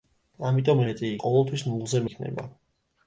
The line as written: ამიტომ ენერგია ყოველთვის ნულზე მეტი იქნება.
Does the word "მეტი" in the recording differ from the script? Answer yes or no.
yes